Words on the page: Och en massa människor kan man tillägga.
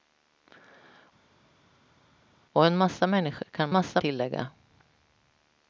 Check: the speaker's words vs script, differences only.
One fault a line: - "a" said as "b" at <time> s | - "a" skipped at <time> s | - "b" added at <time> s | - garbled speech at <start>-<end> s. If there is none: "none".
- "man" said as "massa" at 3.7 s